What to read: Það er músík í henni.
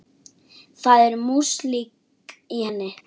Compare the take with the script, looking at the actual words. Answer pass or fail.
pass